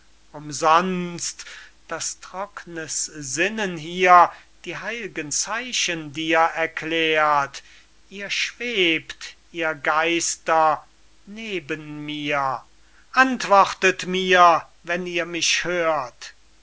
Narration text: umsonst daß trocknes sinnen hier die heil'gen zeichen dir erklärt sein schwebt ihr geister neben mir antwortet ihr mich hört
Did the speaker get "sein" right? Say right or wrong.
wrong